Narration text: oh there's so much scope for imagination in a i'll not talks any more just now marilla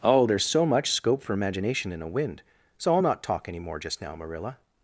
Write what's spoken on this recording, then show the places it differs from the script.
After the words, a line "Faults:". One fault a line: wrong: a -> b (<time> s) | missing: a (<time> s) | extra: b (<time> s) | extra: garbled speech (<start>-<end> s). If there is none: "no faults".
oh there's so much scope for imagination in a wind so i'll not talk any more just now marilla
Faults:
extra: wind so (2.1 s)
wrong: talks -> talk (3.2 s)